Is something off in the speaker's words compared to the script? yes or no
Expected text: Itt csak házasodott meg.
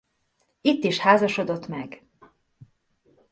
yes